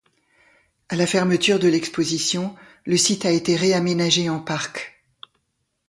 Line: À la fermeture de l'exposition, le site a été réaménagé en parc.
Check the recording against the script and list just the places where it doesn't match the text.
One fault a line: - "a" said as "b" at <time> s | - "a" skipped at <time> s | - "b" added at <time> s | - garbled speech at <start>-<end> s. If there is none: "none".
none